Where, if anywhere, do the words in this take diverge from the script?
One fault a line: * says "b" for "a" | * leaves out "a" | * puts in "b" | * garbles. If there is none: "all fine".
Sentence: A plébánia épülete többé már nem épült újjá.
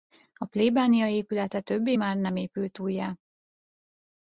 all fine